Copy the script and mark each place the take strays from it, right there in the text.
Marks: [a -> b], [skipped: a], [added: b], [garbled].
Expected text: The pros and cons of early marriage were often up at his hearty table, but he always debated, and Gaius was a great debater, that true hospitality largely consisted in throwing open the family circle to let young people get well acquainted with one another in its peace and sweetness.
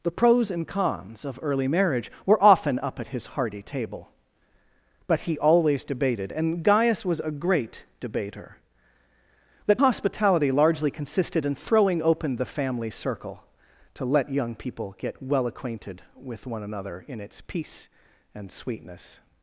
The pros and cons of early marriage were often up at his hearty table, but he always debated, and Gaius was a great debater, that [skipped: true] hospitality largely consisted in throwing open the family circle to let young people get well acquainted with one another in its peace and sweetness.